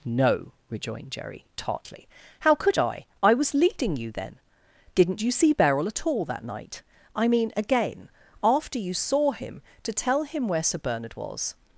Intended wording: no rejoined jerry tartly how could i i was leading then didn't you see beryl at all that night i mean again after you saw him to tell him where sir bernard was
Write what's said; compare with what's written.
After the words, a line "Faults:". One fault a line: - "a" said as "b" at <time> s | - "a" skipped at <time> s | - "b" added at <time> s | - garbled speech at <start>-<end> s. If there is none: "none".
no rejoined jerry tartly how could i i was leading you then didn't you see beryl at all that night i mean again after you saw him to tell him where sir bernard was
Faults:
- "you" added at 4.0 s